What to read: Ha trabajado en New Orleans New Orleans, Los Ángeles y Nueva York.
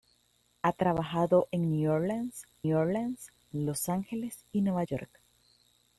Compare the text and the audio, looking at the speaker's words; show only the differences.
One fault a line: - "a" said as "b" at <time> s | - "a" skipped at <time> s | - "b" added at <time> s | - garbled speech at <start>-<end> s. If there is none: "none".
none